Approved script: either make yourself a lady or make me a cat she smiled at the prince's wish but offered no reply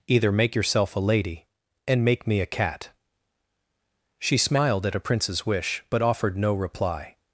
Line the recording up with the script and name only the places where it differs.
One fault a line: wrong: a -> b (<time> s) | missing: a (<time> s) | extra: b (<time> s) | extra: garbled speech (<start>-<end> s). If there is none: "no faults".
wrong: or -> and (1.9 s)
wrong: the -> a (5.0 s)